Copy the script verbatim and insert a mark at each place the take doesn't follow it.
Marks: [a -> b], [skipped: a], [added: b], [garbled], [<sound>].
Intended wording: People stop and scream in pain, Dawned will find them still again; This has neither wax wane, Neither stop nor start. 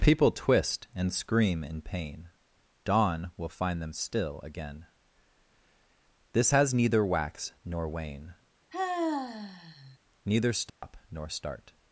People [stop -> twist] and scream in pain, [Dawned -> Dawn] will find them still again; This has neither wax [added: nor] wane, [sigh] Neither stop [dropout] nor start.